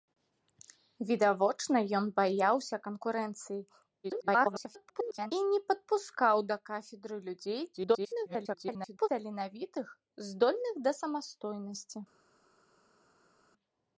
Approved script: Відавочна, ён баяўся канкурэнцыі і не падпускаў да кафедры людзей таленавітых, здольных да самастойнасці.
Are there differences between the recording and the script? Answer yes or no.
yes